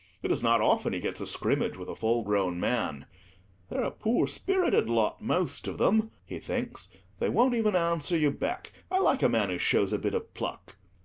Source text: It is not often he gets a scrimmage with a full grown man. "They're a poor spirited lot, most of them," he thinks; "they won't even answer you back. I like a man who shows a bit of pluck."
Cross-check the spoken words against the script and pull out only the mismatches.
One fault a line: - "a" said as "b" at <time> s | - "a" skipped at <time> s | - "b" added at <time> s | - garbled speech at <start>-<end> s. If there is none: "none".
none